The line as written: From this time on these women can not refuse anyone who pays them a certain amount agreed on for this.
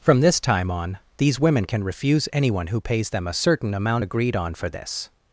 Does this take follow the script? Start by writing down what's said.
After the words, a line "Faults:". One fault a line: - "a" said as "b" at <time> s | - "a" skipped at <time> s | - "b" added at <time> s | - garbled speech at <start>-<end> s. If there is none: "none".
From this time on these women can refuse anyone who pays them a certain amount agreed on for this.
Faults:
- "not" skipped at 1.8 s